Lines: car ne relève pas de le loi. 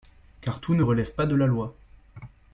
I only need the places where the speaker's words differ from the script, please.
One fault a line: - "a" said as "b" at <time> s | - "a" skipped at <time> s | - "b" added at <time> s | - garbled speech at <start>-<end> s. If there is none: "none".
- "tout" added at 0.6 s
- "le" said as "la" at 1.3 s